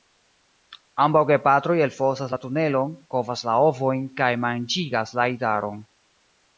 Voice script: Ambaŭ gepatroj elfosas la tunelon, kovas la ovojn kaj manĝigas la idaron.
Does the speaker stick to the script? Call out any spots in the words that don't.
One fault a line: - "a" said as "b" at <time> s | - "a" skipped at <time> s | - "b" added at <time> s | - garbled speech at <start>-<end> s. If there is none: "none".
none